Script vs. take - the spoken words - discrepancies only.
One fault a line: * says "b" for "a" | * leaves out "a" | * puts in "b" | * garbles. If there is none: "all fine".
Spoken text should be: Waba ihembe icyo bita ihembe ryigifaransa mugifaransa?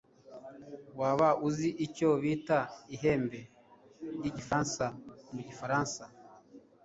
* says "uzi" for "ihembe"